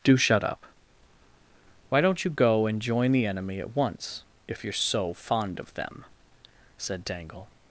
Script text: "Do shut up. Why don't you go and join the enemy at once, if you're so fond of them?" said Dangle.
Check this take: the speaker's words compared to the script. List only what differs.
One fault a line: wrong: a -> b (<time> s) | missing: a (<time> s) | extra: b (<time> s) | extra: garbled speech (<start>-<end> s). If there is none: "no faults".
no faults